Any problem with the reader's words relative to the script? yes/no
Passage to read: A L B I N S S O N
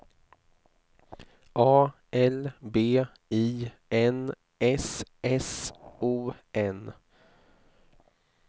no